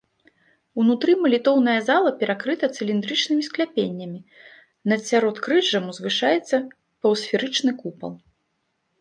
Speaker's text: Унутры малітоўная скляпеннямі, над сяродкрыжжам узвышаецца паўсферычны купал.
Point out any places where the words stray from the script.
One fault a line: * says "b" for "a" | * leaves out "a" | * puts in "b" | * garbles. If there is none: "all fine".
* puts in "зала перакрыта цыліндрычнымі"